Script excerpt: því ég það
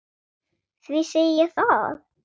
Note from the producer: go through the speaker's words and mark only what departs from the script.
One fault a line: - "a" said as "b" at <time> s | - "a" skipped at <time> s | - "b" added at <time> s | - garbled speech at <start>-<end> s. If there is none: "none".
- "segi" added at 1.1 s